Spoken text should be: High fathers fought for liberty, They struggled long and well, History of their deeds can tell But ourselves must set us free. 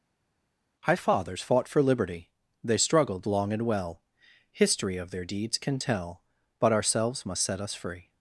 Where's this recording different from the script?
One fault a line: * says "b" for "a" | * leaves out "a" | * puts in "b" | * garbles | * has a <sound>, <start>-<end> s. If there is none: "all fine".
all fine